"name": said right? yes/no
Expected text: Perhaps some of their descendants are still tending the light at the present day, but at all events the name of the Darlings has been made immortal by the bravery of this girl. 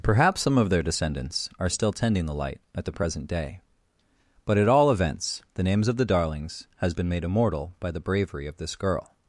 no